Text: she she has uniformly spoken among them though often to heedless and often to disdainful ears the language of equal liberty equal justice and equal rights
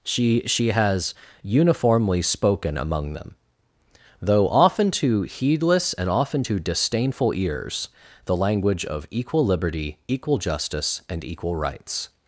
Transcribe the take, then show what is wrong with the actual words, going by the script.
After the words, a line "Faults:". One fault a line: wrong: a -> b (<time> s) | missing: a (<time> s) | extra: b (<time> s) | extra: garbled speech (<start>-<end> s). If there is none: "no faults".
she she has uniformly spoken among them though often to heedless and often to disdainful ears the language of equal liberty equal justice and equal rights
Faults:
no faults